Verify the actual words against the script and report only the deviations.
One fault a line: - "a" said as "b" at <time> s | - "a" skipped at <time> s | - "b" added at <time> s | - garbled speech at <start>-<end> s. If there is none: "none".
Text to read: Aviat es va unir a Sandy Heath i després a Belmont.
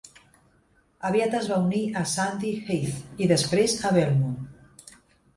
none